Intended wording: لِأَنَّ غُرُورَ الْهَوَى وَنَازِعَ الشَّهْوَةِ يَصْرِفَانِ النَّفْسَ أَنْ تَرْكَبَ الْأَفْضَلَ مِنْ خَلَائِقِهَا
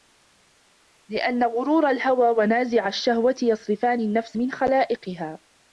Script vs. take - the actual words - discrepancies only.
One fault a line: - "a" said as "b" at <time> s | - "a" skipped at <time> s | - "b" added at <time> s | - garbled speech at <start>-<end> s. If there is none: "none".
- "أَنْ تَرْكَبَ الْأَفْضَلَ" skipped at 4.4 s